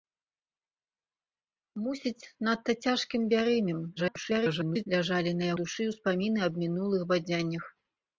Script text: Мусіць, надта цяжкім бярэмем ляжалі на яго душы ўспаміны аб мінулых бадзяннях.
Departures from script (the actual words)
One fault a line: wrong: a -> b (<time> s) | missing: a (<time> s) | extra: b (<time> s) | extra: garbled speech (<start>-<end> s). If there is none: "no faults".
extra: garbled speech (4.0-4.9 s)
missing: яго (5.5 s)